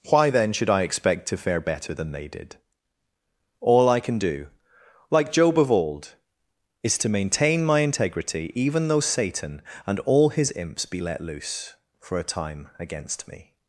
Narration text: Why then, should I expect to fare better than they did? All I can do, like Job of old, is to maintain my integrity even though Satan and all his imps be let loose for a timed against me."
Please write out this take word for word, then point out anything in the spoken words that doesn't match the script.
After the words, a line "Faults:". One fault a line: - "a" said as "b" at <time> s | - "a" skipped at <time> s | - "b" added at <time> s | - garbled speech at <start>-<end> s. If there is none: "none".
Why then, should I expect to fare better than they did? All I can do, like Job of old, is to maintain my integrity even though Satan and all his imps be let loose for a time against me."
Faults:
- "timed" said as "time" at 12.2 s